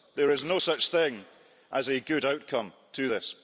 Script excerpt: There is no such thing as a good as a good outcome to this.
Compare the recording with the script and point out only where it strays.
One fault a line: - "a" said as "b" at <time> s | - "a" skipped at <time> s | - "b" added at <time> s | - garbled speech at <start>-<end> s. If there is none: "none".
- "as a good" skipped at 2.2 s